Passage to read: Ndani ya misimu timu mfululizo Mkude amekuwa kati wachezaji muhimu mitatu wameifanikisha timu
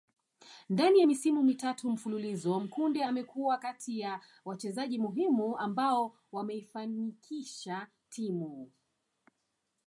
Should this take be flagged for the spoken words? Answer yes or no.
yes